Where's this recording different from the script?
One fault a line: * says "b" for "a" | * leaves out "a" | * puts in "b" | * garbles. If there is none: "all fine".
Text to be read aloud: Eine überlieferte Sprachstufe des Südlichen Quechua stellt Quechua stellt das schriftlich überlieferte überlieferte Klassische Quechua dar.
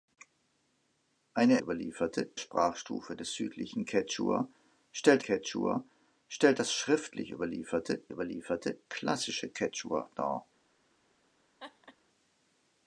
all fine